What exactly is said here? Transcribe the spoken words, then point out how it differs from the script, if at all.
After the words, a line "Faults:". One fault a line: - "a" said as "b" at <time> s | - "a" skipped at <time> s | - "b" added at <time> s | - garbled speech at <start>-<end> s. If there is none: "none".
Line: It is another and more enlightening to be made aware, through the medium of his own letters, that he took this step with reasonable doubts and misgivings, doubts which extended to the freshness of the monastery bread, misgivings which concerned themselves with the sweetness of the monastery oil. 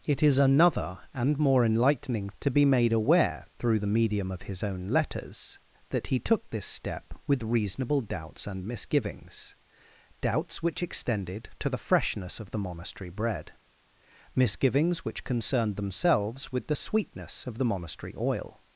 It is another and more enlightening to be made aware, through the medium of his own letters, that he took this step with reasonable doubts and misgivings, doubts which extended to the freshness of the monastery bread, misgivings which concerned themselves with the sweetness of the monastery oil.
Faults:
none